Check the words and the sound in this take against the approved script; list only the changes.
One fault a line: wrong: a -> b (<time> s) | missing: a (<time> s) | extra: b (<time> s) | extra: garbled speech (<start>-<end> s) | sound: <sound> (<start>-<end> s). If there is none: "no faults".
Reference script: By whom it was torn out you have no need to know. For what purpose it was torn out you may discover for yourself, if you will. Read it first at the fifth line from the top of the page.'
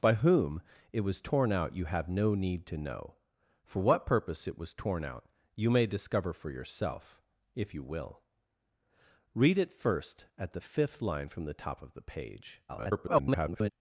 extra: garbled speech (12.7-13.7 s)